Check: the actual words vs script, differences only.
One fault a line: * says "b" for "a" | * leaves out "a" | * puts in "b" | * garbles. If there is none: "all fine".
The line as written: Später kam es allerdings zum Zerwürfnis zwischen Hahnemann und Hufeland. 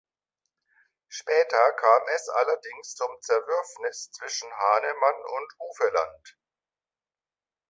all fine